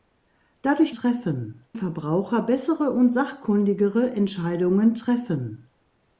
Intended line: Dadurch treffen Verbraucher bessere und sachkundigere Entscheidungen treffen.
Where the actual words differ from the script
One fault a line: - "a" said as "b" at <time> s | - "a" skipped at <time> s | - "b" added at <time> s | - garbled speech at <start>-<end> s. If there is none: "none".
none